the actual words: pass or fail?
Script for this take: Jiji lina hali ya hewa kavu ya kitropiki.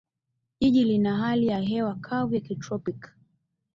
pass